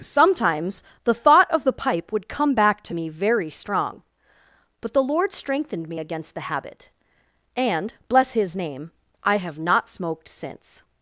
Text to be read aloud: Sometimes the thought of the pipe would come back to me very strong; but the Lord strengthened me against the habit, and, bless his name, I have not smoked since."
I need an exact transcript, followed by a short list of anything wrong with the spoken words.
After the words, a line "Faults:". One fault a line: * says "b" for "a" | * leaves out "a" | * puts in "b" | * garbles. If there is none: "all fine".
Sometimes the thought of the pipe would come back to me very strong; but the Lord strengthened me against the habit, and, bless his name, I have not smoked since."
Faults:
all fine